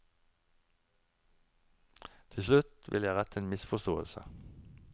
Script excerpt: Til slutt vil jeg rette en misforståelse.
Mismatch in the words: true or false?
false